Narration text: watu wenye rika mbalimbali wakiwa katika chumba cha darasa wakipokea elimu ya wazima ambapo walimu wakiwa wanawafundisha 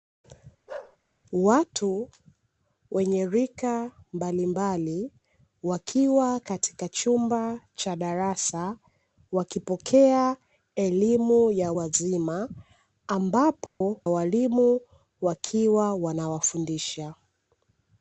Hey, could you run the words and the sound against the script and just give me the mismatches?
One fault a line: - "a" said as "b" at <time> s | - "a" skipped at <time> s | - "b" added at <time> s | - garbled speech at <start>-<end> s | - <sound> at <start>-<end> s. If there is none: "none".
- bark at 0.7-1.0 s
- dropout at 13.7-13.8 s